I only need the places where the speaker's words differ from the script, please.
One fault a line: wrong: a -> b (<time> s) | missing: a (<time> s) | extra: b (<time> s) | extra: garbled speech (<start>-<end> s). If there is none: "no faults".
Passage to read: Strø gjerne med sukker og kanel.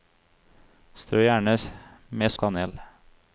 missing: sukker (2.3 s)